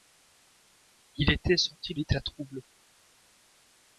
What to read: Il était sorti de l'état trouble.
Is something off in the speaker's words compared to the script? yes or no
yes